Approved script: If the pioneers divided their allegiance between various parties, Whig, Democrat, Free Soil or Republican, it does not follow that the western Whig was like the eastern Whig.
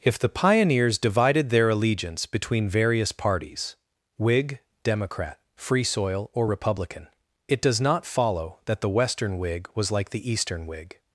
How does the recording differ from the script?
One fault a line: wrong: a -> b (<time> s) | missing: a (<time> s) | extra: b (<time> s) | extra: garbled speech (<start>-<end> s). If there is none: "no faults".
no faults